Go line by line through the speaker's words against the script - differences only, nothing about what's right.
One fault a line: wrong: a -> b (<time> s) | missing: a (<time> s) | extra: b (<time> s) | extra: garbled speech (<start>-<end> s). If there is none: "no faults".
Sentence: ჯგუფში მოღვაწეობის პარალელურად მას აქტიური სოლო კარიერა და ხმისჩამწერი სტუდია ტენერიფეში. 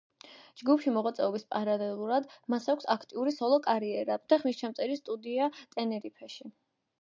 extra: აქვს (2.8 s)